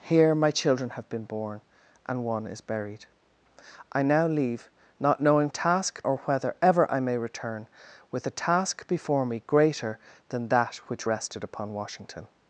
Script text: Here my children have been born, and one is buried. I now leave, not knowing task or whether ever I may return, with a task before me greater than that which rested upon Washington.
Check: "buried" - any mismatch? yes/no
no